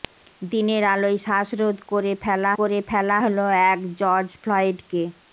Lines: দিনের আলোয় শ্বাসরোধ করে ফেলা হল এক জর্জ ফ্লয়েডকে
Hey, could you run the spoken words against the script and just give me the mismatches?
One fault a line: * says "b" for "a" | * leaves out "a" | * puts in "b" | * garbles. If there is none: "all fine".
* puts in "করে ফেলা"